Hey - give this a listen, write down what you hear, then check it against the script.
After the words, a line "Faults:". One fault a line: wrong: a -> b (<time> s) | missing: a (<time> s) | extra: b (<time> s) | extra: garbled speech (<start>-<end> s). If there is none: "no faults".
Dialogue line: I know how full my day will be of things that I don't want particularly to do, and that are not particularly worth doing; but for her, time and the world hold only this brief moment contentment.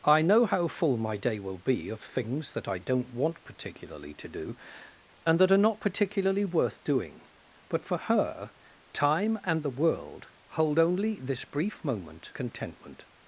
I know how full my day will be of things that I don't want particularly to do, and that are not particularly worth doing; but for her, time and the world hold only this brief moment contentment.
Faults:
no faults